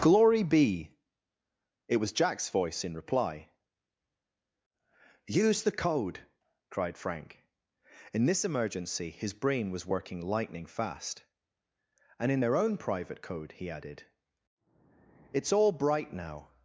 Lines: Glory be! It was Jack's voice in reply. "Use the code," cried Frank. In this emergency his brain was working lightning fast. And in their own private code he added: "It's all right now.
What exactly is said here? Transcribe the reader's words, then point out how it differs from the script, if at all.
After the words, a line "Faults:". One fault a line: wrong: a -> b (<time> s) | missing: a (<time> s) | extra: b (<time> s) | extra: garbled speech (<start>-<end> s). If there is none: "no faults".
Glory be! It was Jack's voice in reply. "Use the code," cried Frank. In this emergency his brain was working lightning fast. And in their own private code he added: "It's all bright now.
Faults:
wrong: right -> bright (15.7 s)